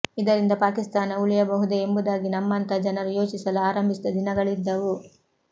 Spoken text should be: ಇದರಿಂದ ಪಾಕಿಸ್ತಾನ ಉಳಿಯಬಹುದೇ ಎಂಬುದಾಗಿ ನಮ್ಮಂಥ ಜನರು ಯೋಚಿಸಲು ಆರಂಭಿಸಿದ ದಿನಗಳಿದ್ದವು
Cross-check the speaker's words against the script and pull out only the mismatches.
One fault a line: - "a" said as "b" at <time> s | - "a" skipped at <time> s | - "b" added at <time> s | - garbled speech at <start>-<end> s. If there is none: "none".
none